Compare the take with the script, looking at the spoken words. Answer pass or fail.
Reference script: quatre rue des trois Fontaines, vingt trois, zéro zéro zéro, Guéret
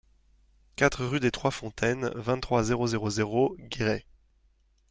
pass